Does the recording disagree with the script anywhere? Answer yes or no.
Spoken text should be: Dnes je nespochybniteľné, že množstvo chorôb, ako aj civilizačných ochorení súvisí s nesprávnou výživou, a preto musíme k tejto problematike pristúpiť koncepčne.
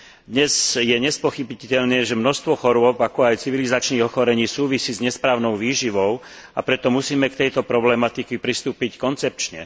no